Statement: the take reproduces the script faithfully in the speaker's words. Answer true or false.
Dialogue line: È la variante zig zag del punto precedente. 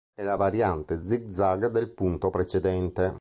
true